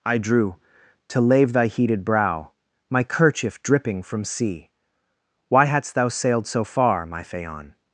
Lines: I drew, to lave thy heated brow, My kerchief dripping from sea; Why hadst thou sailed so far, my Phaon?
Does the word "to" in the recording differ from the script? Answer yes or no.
no